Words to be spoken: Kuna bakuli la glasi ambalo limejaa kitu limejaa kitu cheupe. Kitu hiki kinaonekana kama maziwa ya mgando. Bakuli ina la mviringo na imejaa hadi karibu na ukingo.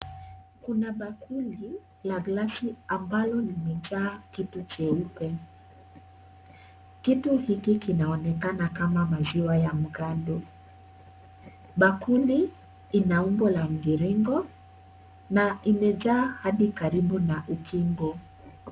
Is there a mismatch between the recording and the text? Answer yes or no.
yes